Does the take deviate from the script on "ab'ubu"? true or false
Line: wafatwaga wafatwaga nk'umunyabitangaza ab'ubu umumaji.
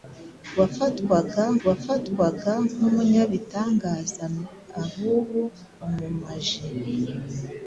false